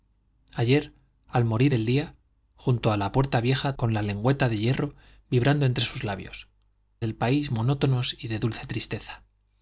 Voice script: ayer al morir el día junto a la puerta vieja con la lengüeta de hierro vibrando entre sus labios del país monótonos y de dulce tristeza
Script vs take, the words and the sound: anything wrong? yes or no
no